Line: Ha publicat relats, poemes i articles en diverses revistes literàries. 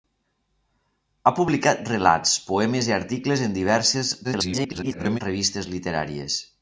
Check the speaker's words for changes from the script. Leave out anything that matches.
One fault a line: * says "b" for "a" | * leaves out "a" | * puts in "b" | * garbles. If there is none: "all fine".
* garbles